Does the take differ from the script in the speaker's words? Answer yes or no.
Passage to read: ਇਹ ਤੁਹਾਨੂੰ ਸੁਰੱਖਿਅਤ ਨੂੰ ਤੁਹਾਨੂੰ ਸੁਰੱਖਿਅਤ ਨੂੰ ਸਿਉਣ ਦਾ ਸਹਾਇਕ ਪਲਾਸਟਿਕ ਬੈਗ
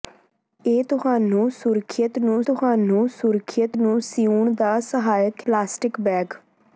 no